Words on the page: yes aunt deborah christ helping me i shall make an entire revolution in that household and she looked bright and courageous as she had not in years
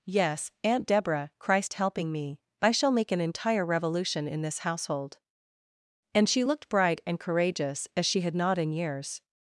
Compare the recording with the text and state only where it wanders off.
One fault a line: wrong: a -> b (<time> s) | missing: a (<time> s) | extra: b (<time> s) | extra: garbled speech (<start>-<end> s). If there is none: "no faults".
wrong: that -> this (4.4 s)